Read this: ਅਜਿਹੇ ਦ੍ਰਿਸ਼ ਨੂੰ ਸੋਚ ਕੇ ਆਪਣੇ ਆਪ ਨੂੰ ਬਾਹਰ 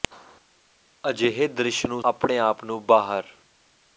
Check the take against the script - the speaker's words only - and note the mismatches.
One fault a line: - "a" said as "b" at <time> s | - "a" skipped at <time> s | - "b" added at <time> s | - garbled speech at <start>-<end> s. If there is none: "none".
- "ਸੋਚ ਕੇ" skipped at 2.0 s